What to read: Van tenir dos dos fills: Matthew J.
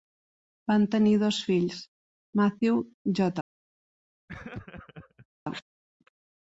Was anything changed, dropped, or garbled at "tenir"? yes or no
no